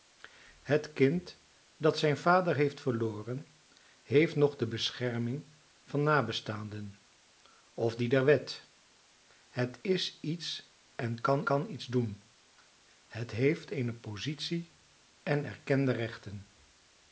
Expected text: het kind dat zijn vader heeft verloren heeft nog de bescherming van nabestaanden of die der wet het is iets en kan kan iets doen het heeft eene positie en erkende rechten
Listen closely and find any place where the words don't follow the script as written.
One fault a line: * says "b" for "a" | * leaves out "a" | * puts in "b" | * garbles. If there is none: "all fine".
all fine